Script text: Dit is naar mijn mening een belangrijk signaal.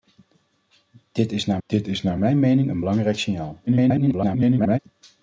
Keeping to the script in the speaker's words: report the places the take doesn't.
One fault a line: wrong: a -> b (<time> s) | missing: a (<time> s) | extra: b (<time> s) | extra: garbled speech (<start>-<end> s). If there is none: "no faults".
extra: dit is naar (1.7 s)
extra: garbled speech (3.7-4.8 s)